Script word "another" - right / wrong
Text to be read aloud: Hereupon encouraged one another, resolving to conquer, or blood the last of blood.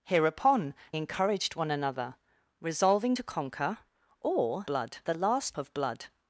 right